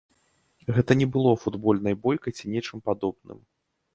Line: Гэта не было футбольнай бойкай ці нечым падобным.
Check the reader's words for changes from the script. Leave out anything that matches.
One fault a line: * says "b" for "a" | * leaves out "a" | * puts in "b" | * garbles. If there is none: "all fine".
all fine